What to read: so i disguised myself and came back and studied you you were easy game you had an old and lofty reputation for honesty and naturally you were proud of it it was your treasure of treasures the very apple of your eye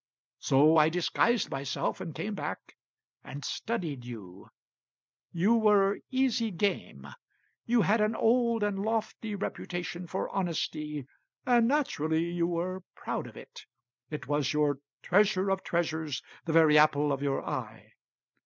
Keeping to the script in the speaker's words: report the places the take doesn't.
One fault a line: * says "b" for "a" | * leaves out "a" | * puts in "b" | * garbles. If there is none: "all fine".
all fine